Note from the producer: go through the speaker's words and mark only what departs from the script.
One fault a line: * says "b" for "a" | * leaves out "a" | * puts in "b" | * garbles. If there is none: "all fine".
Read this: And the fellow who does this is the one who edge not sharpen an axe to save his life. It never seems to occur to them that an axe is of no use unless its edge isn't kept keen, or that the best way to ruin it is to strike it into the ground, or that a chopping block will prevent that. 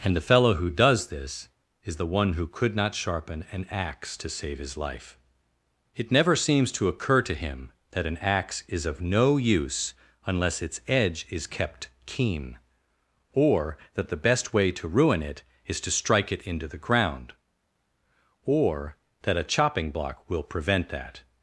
* says "could" for "edge"
* says "him" for "them"
* says "is" for "isn't"